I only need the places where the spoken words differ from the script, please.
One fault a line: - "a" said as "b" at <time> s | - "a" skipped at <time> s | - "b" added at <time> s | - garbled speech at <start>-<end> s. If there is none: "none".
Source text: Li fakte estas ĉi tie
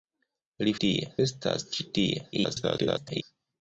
- "fakte" said as "tie" at 0.9 s
- garbled speech at 2.3-3.2 s